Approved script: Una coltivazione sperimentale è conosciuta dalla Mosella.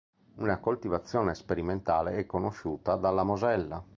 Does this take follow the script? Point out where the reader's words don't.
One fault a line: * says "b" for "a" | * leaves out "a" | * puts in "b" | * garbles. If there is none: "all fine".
all fine